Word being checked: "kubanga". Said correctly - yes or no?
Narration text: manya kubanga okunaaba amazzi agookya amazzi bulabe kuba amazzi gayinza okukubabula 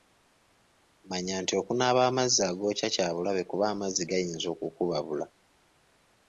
no